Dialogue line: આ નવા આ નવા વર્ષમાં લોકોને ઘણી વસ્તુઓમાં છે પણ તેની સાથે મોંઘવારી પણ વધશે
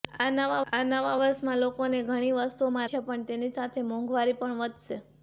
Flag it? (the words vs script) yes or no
no